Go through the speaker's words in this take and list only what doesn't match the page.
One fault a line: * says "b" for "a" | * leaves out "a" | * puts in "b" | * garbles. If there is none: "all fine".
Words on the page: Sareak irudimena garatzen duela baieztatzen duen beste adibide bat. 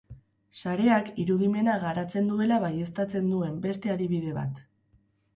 all fine